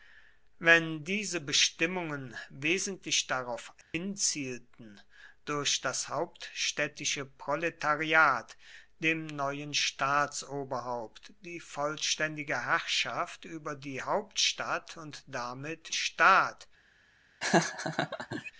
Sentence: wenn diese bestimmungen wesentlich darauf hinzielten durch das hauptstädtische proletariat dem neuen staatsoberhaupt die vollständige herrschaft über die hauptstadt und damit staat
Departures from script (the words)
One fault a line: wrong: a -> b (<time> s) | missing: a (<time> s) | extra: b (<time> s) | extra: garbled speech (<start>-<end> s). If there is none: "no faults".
no faults